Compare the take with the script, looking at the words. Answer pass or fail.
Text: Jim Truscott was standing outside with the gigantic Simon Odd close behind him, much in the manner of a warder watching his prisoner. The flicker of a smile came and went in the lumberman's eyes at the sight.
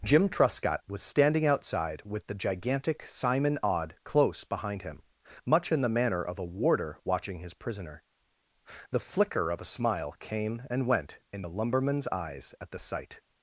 pass